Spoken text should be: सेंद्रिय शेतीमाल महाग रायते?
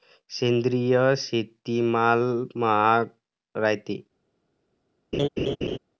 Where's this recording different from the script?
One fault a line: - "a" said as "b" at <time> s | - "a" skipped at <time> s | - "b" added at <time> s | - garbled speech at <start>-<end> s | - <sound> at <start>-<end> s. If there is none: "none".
- laugh at 5.1-5.8 s